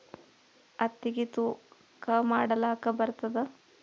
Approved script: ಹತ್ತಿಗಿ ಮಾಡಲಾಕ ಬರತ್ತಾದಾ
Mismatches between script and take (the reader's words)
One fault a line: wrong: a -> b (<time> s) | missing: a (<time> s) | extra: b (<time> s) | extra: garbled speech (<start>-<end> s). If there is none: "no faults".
extra: ತೂಕಾ (1.3 s)